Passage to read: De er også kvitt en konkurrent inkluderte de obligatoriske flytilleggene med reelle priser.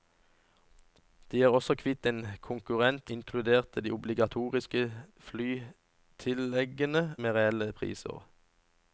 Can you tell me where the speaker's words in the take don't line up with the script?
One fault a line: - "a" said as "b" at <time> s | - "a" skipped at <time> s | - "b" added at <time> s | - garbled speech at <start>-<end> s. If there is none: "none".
none